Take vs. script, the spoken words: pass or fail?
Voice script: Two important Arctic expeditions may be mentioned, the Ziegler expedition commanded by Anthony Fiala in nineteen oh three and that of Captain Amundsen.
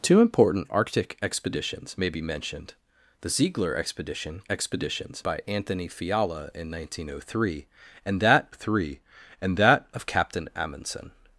fail